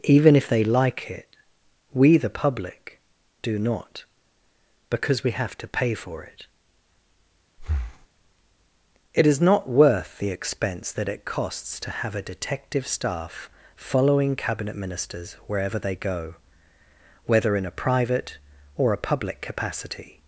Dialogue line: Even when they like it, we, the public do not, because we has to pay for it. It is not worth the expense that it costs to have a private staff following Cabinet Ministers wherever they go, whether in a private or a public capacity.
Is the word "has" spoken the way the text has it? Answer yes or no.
no